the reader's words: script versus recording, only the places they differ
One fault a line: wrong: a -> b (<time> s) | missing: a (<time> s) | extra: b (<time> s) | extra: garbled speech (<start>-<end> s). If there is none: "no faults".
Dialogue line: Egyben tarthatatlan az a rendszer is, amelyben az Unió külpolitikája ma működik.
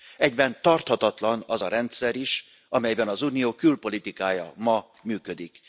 no faults